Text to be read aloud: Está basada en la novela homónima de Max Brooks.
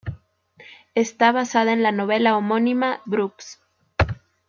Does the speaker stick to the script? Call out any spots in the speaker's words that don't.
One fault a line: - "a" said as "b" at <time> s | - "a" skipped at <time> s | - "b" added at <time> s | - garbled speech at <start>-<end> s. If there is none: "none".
- "de Max" skipped at 3.0 s